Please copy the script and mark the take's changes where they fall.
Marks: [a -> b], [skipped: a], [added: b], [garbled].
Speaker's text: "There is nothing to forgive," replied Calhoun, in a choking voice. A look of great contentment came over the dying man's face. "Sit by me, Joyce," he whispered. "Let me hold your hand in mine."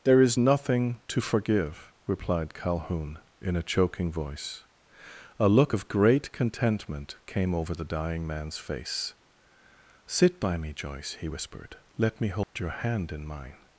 "There is nothing to forgive," replied Calhoun, in a choking voice. A look of great contentment came over the dying man's face. "Sit by me, Joyce," he whispered. "Let me hold your hand in mine."